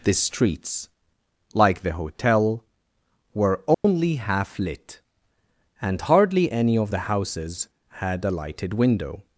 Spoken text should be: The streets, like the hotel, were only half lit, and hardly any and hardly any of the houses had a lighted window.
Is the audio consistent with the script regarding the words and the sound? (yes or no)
no